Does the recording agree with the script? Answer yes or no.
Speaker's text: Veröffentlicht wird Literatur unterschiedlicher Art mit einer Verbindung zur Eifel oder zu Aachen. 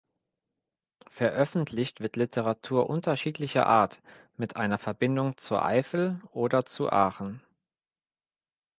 yes